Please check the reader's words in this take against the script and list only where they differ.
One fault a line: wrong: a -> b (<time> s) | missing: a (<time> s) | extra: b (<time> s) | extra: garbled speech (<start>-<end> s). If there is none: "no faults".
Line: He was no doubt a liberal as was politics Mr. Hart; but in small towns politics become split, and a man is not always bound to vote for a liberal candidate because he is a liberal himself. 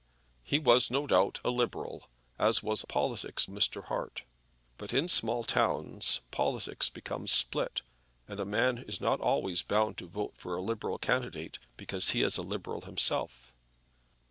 no faults